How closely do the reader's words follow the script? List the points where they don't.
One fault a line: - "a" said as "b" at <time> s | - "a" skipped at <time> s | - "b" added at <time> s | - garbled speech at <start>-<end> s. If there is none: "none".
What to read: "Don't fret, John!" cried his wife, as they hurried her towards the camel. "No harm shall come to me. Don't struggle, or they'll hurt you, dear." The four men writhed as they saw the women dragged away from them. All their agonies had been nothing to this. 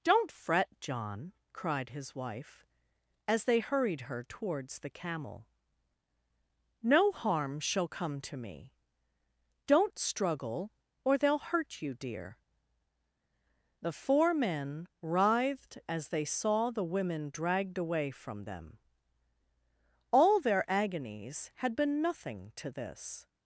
none